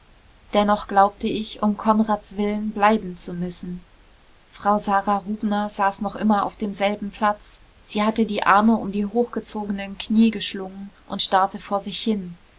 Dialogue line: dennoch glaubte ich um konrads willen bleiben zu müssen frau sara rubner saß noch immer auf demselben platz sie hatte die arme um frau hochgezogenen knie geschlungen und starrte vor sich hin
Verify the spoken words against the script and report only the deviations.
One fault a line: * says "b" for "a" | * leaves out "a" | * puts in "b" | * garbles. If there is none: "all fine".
* says "die" for "frau"